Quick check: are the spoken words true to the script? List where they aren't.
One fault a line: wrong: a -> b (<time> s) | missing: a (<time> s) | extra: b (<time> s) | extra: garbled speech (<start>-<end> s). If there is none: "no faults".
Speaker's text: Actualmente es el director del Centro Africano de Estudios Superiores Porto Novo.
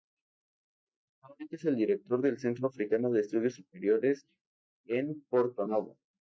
extra: en (4.8 s)